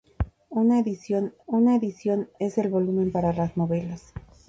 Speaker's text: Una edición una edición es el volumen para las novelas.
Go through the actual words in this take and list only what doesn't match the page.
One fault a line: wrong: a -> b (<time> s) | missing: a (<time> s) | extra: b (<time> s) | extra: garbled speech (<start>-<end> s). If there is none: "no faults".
no faults